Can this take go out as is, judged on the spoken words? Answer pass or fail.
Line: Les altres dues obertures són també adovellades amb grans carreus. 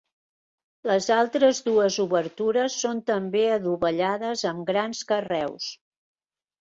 pass